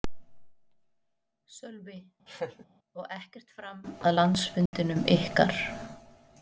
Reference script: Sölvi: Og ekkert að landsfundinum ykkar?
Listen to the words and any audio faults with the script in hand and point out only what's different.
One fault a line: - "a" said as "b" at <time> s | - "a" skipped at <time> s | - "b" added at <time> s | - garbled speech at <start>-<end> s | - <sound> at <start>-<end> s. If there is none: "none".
- laugh at 2.3-2.6 s
- "fram" added at 3.6 s
- dropout at 4.7-4.7 s